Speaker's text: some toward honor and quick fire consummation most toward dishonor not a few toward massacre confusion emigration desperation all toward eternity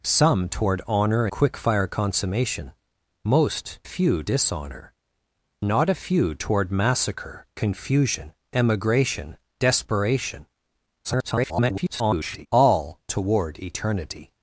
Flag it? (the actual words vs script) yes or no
yes